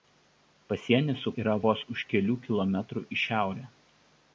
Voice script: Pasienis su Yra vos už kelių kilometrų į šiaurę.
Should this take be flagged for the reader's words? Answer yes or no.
no